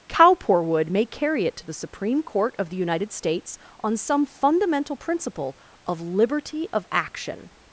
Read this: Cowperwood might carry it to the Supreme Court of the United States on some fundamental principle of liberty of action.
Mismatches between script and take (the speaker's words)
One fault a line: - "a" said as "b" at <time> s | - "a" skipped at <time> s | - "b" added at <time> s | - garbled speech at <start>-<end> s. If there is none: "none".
- "might" said as "may" at 0.9 s